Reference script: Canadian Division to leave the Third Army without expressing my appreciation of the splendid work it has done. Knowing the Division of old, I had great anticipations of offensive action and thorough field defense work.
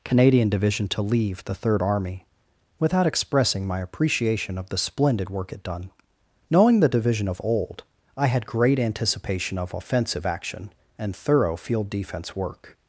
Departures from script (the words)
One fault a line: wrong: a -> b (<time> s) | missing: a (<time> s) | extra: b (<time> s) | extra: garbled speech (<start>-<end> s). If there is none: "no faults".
missing: has (5.6 s)
wrong: anticipations -> anticipation (8.8 s)